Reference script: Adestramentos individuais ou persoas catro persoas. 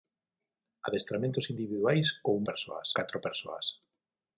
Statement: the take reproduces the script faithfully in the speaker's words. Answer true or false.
true